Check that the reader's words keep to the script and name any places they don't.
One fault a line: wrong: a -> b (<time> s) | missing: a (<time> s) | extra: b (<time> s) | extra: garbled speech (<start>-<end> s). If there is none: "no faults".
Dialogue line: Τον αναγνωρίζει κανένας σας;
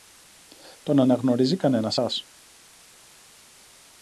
no faults